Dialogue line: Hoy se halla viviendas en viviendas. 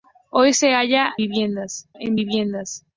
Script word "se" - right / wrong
right